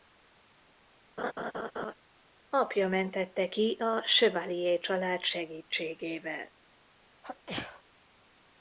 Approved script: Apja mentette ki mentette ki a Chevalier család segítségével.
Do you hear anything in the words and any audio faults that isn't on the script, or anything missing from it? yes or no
yes